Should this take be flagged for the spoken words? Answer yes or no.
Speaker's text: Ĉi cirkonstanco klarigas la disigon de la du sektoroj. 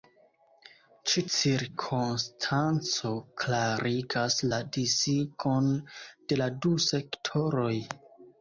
no